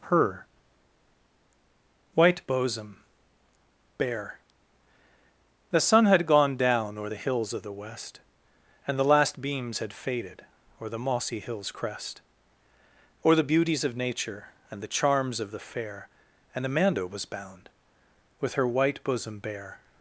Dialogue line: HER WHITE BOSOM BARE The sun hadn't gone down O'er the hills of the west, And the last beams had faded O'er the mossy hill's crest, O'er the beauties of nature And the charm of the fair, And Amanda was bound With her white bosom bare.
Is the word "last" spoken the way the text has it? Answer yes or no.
yes